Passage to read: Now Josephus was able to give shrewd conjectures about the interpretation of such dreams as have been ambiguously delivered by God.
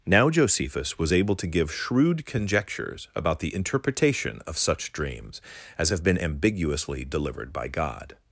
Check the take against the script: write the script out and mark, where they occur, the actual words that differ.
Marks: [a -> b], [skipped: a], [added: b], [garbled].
Now Josephus was able to give shrewd conjectures about the interpretation of such dreams as have been ambiguously delivered by God.